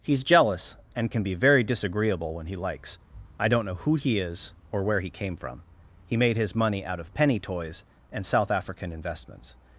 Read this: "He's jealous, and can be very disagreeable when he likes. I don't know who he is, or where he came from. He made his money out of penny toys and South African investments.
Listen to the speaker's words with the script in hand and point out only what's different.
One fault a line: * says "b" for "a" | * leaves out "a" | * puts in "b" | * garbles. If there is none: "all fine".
all fine